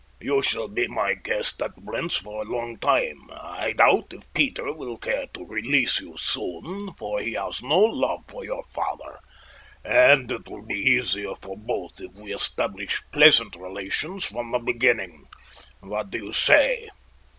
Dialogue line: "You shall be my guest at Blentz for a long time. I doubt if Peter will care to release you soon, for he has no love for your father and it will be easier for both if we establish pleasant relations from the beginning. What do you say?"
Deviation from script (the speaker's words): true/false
false